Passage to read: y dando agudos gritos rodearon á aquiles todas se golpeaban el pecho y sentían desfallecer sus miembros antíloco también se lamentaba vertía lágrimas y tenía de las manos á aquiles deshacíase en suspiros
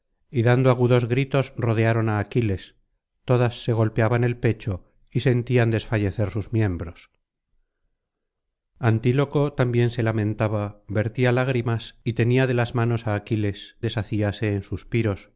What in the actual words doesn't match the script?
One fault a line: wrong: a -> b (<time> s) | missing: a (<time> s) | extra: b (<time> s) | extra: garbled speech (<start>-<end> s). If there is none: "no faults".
no faults